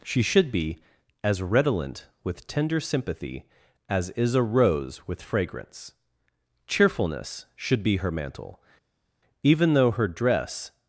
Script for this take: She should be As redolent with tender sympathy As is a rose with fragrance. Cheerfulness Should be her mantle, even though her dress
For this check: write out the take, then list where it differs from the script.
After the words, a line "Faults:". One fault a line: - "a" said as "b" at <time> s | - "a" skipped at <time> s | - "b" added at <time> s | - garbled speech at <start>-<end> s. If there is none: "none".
She should be As redolent with tender sympathy As is a rose with fragrance. Cheerfulness Should be her mantle, even though her dress
Faults:
none